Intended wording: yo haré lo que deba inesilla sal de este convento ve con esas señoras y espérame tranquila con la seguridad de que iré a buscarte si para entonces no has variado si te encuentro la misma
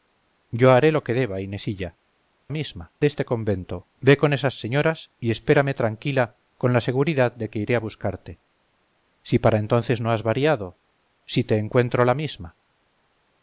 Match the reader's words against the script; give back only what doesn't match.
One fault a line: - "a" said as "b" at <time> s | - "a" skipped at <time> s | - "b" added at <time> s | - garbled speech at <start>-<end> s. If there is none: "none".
- "sal" said as "misma" at 2.5 s